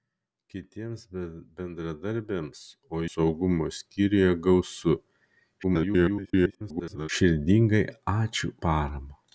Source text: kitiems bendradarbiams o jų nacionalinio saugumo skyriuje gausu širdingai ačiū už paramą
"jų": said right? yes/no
no